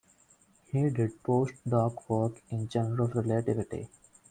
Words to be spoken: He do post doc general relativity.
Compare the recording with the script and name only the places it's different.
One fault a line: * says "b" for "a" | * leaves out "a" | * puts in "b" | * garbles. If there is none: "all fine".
* says "did" for "do"
* puts in "work in"